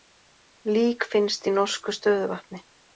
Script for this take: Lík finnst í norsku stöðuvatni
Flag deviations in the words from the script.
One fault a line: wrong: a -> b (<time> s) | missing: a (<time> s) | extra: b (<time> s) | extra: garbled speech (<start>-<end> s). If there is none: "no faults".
no faults